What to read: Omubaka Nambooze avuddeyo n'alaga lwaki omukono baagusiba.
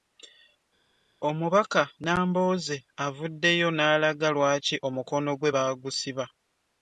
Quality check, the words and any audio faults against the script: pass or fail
fail